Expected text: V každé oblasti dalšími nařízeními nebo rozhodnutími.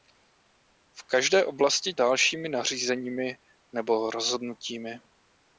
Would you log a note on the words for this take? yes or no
no